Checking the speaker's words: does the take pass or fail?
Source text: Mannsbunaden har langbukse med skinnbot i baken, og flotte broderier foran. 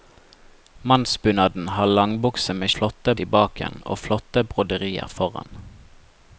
fail